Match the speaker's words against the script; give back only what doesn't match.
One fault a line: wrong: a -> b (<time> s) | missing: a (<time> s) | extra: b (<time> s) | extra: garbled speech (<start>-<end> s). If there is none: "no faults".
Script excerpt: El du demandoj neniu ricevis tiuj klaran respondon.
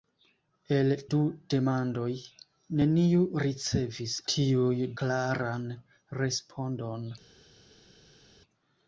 no faults